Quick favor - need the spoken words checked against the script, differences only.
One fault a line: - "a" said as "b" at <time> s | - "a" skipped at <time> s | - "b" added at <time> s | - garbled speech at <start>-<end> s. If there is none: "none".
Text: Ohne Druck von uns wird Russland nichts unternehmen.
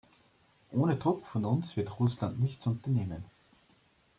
none